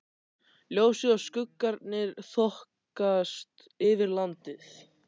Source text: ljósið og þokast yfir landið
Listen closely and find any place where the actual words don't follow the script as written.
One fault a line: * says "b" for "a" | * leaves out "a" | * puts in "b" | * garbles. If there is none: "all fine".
* puts in "skuggarnir"